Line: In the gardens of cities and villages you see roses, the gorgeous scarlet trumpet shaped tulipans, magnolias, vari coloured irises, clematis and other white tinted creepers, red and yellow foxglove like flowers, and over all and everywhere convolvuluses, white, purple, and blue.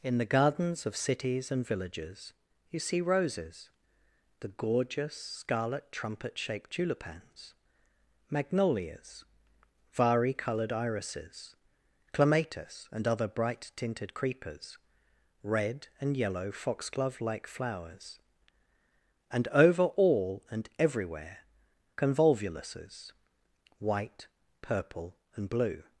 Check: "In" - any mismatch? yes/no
no